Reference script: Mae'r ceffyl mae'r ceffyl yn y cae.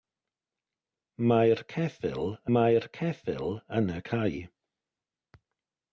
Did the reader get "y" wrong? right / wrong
right